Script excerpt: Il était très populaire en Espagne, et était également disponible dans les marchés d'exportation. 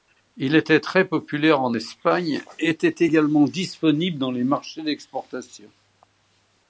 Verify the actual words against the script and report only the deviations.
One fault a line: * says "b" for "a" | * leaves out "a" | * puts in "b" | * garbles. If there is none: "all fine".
all fine